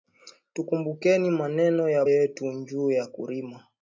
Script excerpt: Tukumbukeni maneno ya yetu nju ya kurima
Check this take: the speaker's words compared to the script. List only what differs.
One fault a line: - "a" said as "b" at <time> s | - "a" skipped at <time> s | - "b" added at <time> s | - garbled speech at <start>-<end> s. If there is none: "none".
none